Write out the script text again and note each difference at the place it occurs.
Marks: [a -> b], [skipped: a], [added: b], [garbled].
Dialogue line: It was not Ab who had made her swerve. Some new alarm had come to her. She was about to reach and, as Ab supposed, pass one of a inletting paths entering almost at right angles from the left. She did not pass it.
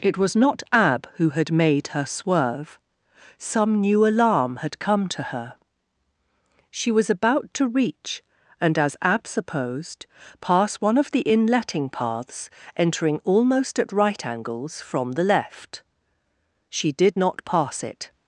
It was not Ab who had made her swerve. Some new alarm had come to her. She was about to reach and, as Ab supposed, pass one of [a -> the] inletting paths entering almost at right angles from the left. She did not pass it.